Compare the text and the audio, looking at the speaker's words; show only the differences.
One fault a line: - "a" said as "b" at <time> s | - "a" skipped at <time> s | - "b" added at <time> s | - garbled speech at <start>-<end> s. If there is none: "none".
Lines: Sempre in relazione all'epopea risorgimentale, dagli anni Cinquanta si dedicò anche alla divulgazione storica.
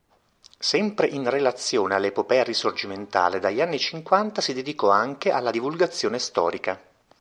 none